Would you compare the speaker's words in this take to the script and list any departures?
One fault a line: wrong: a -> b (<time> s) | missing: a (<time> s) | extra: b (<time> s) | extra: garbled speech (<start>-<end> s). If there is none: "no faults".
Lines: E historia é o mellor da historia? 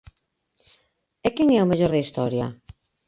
wrong: historia -> quen (1.4 s)